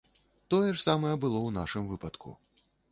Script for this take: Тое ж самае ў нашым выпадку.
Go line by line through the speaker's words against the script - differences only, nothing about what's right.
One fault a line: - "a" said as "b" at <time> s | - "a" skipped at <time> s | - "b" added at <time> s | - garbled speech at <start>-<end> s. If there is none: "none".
- "было" added at 1.2 s